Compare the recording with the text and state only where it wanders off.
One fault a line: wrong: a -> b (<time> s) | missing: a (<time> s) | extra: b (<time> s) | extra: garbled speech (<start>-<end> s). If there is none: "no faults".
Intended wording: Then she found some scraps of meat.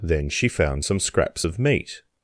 no faults